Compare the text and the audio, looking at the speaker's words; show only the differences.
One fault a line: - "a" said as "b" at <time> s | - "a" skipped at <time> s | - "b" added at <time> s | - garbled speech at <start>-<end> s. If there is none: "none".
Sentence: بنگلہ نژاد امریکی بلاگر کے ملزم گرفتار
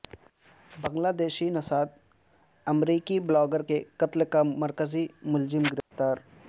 - "دیشی" added at 1.2 s
- "قتل کا مرکزی" added at 4.0 s